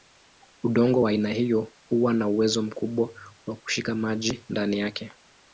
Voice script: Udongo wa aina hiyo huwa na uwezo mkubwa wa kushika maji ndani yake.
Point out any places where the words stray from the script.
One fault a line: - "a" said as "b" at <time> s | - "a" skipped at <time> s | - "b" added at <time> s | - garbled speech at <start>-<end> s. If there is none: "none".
none